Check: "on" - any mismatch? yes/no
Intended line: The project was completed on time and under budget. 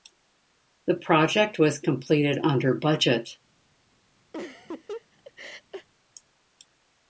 yes